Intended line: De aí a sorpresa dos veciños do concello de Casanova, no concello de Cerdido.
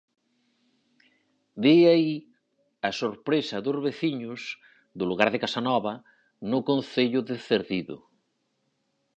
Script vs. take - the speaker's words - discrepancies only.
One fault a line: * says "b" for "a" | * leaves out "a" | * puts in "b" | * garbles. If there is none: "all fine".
* says "lugar" for "concello"